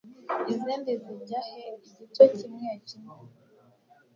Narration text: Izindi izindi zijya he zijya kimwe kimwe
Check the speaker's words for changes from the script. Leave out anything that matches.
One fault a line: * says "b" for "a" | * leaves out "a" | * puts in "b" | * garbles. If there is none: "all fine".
* leaves out "izindi"
* says "igice" for "zijya"